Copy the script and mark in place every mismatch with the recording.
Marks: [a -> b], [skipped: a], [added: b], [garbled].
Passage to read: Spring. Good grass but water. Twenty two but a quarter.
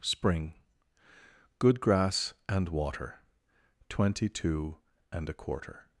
Spring. Good grass [but -> and] water. Twenty two [but -> and] a quarter.